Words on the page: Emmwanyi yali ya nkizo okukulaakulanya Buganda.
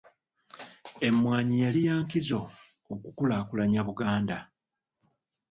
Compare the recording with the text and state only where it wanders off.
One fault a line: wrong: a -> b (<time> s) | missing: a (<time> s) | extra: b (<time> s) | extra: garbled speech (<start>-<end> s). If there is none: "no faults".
no faults